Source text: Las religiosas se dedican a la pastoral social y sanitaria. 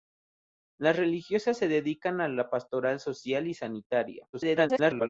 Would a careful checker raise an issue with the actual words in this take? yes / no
yes